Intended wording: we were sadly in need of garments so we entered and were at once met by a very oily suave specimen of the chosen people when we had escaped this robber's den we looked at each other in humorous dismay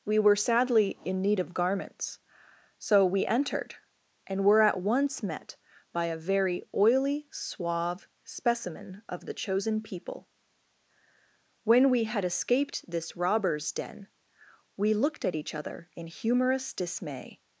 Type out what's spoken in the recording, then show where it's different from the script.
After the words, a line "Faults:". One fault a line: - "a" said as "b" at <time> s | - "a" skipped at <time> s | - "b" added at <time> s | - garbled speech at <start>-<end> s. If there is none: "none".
we were sadly in need of garments so we entered and were at once met by a very oily suave specimen of the chosen people when we had escaped this robber's den we looked at each other in humorous dismay
Faults:
none